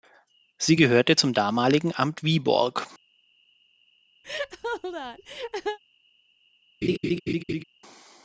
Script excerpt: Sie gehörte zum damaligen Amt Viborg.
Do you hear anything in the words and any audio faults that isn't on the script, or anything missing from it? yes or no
yes